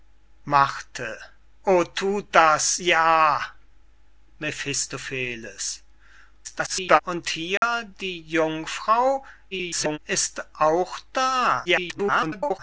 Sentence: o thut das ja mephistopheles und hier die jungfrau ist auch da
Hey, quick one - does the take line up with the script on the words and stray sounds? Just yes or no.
no